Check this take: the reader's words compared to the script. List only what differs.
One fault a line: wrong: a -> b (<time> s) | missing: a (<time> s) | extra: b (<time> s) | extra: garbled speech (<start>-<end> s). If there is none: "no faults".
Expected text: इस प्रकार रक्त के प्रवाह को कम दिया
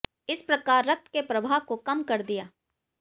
extra: कर (2.0 s)